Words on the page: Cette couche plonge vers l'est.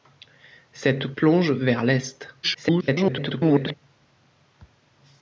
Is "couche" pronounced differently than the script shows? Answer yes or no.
yes